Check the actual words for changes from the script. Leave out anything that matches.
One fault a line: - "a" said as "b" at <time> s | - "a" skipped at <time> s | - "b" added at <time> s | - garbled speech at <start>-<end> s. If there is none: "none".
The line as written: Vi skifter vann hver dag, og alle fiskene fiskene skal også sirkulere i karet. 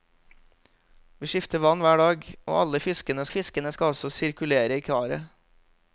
none